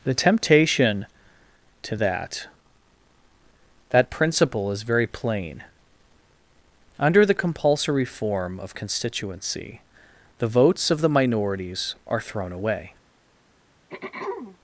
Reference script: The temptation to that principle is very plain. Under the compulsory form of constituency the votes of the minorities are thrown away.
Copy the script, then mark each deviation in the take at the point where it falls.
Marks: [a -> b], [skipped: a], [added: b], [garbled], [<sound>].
The temptation to that [added: that] principle is very plain. Under the compulsory form of constituency the votes of the minorities are thrown away. [throat clearing]